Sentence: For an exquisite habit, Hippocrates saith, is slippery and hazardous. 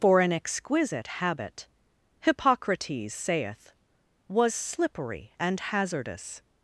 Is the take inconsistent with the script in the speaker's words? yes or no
yes